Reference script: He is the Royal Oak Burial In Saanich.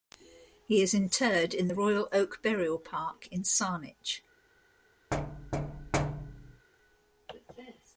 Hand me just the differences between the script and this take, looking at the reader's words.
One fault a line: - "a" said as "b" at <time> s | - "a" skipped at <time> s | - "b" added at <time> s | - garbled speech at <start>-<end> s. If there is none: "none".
- "interred in" added at 0.9 s
- "Park" added at 2.8 s